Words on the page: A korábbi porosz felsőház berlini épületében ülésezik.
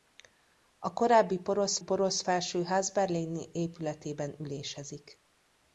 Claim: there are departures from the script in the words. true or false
true